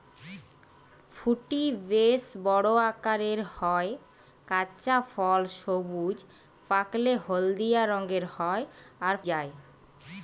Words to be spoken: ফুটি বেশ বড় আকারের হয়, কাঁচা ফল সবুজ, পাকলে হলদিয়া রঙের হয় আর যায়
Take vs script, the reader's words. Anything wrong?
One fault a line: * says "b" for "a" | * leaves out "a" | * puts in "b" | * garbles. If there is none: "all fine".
all fine